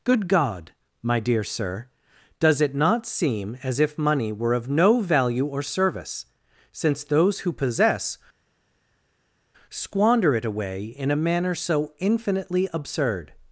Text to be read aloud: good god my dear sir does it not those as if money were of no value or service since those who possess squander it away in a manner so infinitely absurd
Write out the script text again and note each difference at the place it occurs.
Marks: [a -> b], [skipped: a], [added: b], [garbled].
good god my dear sir does it not [those -> seem] as if money were of no value or service since those who possess squander it away in a manner so infinitely absurd